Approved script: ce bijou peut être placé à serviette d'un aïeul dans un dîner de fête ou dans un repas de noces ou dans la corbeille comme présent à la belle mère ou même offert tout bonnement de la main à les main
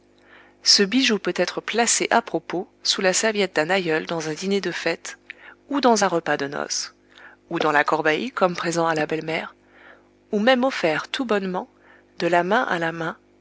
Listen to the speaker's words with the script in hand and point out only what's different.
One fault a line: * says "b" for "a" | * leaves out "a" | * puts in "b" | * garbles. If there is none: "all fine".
* puts in "propos sous la"
* says "la" for "les"